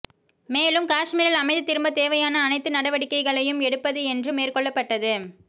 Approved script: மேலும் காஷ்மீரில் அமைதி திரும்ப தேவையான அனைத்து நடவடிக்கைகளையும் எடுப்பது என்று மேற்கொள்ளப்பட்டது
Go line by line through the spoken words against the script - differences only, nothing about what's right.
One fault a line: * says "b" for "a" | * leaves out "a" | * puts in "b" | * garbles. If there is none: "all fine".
all fine